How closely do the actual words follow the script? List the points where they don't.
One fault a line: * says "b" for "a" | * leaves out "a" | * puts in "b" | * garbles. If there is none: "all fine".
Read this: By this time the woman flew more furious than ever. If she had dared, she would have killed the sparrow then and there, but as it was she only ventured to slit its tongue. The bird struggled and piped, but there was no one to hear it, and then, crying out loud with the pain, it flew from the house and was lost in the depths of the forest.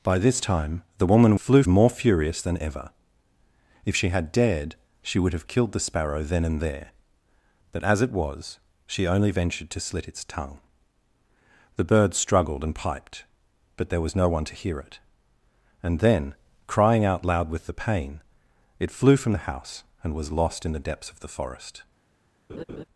all fine